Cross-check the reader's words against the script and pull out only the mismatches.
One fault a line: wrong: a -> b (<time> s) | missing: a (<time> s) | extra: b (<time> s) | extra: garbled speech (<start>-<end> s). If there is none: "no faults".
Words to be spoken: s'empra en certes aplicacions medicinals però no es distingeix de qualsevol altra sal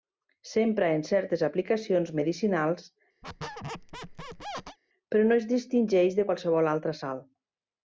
no faults